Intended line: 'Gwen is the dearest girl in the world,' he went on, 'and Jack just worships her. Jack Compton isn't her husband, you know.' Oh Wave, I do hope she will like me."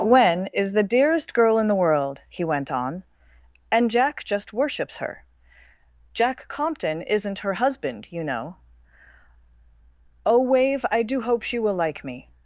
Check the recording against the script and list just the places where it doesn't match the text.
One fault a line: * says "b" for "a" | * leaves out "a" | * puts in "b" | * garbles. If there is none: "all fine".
all fine